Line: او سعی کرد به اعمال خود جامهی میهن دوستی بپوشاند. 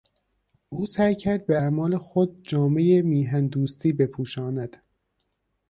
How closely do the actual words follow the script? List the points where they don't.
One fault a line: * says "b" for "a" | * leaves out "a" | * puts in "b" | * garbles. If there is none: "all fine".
all fine